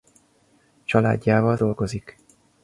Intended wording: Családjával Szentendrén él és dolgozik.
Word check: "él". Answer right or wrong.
wrong